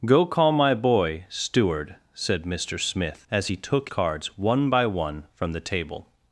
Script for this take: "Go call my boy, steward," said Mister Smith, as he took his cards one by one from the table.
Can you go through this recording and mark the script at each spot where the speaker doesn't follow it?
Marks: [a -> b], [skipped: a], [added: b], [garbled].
"Go call my boy, steward," said Mister Smith, as he took [skipped: his] cards one by one from the table.